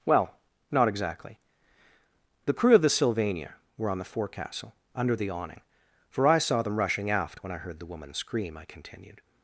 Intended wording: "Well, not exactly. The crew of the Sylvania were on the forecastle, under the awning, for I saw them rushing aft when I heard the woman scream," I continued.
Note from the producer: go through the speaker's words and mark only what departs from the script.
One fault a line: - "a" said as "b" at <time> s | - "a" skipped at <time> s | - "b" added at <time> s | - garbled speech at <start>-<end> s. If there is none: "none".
none